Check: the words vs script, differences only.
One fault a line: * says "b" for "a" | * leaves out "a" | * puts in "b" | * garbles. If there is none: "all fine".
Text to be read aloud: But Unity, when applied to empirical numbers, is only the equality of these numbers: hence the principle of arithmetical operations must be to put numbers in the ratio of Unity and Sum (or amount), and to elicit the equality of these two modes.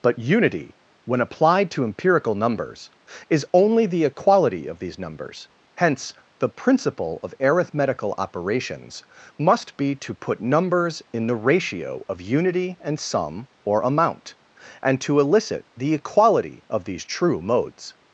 * says "true" for "two"